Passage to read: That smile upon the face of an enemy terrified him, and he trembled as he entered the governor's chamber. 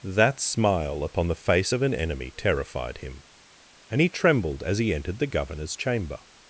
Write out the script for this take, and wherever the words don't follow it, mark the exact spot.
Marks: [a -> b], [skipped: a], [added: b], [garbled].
That smile upon the face of an enemy terrified him, and he trembled as he entered the governor's chamber.